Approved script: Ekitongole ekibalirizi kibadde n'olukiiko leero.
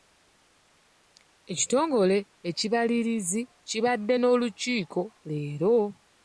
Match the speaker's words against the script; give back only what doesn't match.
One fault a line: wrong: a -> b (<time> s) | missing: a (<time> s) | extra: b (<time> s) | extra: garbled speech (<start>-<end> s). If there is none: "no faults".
no faults